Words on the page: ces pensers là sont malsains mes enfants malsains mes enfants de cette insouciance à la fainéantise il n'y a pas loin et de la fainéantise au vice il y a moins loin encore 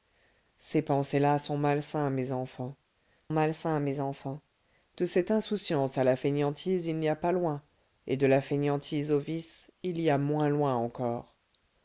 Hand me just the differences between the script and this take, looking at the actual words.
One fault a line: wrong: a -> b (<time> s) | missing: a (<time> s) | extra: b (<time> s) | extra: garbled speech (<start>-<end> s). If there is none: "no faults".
no faults